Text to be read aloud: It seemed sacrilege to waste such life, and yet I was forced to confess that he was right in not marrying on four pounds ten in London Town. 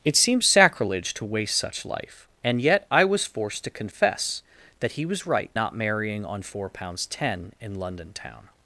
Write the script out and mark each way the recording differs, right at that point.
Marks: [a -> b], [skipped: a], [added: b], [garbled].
It seemed sacrilege to waste such life, and yet I was forced to confess that he was right [skipped: in] not marrying on four pounds ten in London Town.